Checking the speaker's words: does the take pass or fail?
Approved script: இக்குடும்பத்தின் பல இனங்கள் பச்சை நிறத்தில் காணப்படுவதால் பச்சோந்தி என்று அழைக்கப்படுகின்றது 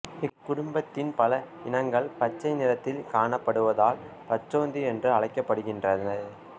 pass